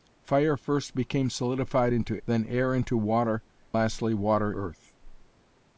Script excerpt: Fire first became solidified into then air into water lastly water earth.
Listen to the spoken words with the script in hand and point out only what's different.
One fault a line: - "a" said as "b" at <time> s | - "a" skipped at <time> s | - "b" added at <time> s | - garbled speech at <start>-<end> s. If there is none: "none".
none